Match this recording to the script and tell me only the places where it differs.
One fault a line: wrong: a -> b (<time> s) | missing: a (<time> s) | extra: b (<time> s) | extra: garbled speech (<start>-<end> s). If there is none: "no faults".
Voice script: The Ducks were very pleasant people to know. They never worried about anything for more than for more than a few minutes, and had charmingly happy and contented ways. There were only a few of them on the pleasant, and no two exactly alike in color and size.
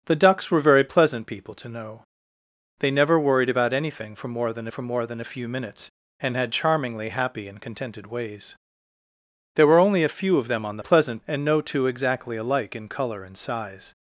no faults